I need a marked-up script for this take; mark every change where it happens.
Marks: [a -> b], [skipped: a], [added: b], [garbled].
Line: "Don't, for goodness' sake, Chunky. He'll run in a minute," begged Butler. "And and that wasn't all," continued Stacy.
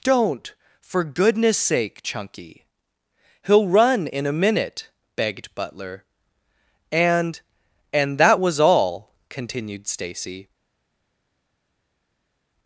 "Don't, for goodness' sake, Chunky. He'll run in a minute," begged Butler. "And and that [wasn't -> was] all," continued Stacy.